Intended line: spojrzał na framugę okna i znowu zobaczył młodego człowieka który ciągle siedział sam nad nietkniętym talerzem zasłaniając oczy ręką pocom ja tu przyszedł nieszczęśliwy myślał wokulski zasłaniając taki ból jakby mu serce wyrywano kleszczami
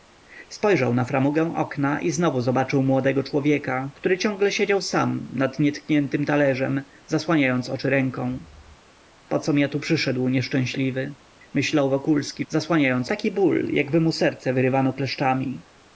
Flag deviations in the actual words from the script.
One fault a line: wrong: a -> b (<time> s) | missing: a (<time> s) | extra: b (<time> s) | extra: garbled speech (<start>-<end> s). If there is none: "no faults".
no faults